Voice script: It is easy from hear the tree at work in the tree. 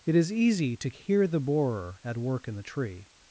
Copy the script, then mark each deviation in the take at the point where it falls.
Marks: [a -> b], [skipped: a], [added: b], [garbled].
It is easy [from -> to] hear the [tree -> borer] at work in the tree.